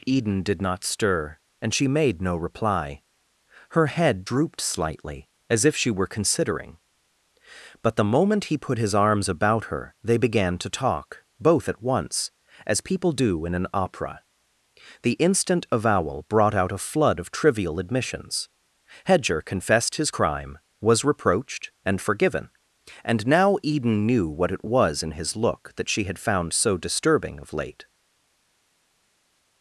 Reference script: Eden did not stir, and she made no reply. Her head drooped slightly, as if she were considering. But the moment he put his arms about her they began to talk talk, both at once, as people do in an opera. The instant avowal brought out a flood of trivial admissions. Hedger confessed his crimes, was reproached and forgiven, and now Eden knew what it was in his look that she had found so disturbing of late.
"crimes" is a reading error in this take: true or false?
true